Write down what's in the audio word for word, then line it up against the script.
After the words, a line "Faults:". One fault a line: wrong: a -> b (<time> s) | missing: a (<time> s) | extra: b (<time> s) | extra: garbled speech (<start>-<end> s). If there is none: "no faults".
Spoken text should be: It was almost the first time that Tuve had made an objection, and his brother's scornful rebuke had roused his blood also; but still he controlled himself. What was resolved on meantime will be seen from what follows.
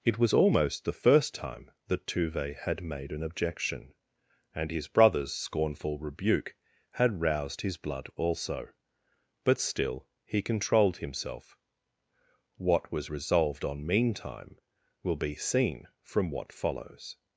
It was almost the first time that Tuve had made an objection, and his brother's scornful rebuke had roused his blood also; but still he controlled himself. What was resolved on meantime will be seen from what follows.
Faults:
no faults